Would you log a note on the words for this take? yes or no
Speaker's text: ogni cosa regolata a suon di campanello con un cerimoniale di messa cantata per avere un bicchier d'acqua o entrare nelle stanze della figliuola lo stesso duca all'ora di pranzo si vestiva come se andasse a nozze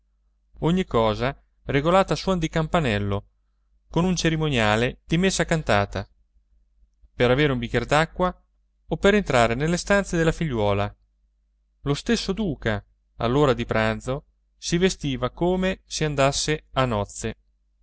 yes